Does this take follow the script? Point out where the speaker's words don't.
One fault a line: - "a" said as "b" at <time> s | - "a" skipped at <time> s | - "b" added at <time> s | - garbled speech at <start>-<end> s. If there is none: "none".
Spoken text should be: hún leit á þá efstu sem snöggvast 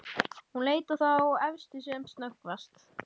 none